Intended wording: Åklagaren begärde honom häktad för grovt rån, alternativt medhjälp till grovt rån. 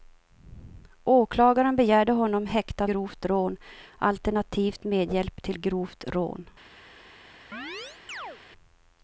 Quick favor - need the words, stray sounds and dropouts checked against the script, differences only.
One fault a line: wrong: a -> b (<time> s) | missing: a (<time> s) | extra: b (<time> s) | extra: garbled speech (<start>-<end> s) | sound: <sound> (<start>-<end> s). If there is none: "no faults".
missing: för (2.9 s)
sound: chirp (7.5-8.4 s)